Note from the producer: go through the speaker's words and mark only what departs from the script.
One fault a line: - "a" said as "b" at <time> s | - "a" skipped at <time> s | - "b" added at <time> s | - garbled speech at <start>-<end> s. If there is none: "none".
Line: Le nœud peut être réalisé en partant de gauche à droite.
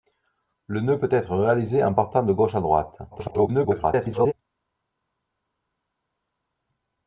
- garbled speech at 3.1-4.3 s